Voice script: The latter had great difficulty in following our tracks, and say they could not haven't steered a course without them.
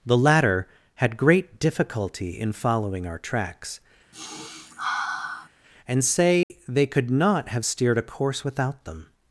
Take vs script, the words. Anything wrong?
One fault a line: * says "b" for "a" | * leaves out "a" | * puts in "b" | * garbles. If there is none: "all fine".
* says "have" for "haven't"